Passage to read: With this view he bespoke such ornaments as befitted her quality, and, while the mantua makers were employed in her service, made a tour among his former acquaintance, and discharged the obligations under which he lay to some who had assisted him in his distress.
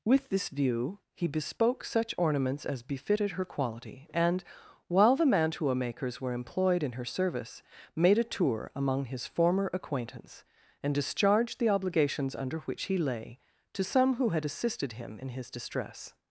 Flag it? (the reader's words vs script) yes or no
no